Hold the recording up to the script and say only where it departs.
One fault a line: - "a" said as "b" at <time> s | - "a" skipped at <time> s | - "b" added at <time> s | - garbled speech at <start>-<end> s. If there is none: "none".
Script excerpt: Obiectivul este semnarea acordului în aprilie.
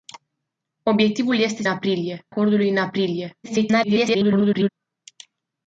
- "semnarea" said as "aprilie" at 1.7 s
- garbled speech at 3.4-4.7 s